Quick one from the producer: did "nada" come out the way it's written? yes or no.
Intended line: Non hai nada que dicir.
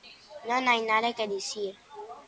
yes